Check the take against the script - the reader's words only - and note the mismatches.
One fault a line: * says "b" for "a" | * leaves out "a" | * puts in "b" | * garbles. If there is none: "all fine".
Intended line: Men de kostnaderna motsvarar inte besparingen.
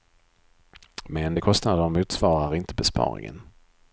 all fine